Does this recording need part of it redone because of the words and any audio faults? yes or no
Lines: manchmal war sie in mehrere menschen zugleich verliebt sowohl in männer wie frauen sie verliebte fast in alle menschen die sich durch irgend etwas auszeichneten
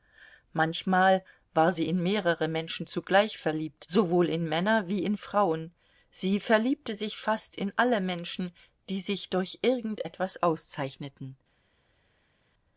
yes